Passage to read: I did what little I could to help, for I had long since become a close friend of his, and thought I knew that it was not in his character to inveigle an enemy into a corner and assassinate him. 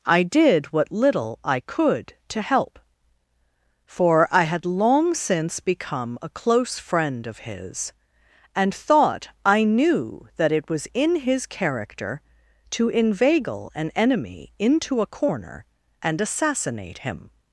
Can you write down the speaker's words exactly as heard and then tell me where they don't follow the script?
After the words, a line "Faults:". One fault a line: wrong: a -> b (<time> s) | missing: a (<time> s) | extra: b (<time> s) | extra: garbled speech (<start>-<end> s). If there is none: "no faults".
I did what little I could to help, for I had long since become a close friend of his, and thought I knew that it was in his character to inveigle an enemy into a corner and assassinate him.
Faults:
missing: not (10.9 s)